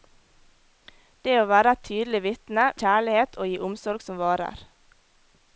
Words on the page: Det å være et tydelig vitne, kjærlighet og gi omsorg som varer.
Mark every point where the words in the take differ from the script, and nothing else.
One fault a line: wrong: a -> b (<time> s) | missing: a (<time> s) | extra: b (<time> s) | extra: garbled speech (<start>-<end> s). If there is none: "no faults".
no faults